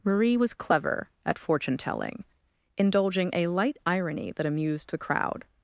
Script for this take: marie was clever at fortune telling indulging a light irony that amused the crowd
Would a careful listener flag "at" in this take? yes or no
no